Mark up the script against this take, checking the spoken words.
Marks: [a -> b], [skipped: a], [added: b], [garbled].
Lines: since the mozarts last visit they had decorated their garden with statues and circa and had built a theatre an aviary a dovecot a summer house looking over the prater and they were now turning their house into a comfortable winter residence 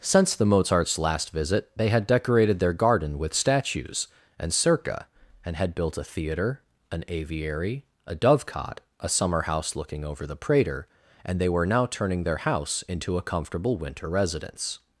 since the mozarts last visit they had decorated their garden with statues and circa and had built a theatre an aviary a dovecot a summer house looking over the prater and they were now turning their house into a comfortable winter residence